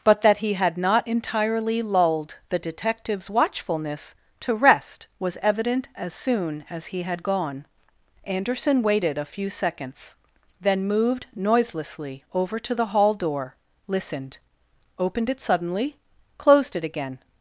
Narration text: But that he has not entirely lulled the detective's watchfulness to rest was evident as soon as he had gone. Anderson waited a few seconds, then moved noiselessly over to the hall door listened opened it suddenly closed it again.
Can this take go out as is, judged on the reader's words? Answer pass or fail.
fail